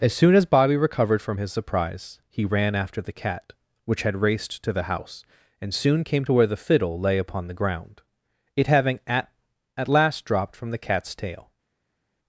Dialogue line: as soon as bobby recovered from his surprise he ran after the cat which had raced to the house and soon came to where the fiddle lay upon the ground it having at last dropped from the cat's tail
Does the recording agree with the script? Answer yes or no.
no